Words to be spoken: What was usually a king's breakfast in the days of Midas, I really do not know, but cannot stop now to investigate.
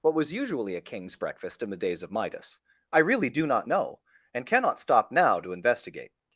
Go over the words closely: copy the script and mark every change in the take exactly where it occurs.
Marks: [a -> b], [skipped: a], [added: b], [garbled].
What was usually a king's breakfast in the days of Midas, I really do not know, [but -> and] cannot stop now to investigate.